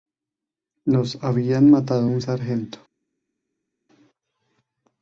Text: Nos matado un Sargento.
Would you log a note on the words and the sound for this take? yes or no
yes